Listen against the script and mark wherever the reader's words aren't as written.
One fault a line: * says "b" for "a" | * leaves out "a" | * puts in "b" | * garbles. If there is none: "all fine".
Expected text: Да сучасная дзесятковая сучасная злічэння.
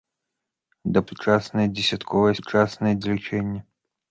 all fine